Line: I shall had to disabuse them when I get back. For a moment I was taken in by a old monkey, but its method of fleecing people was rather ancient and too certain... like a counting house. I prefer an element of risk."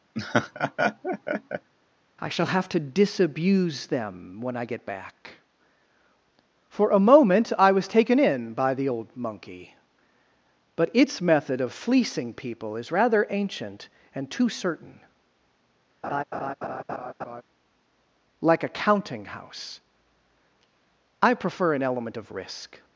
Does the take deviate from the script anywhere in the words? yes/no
yes